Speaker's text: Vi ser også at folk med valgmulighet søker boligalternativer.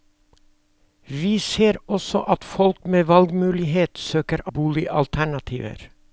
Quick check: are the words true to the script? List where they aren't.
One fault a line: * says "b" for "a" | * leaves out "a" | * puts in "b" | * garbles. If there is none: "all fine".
all fine